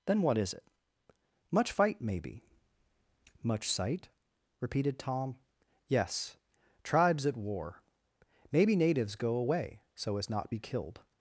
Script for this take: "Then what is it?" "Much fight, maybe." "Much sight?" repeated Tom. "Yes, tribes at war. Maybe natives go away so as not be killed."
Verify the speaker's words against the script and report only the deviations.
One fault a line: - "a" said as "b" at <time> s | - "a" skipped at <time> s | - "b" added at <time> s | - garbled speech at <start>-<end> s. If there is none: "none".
none